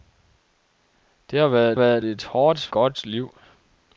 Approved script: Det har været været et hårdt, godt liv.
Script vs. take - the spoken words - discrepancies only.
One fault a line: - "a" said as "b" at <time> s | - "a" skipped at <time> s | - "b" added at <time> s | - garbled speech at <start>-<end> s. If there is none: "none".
none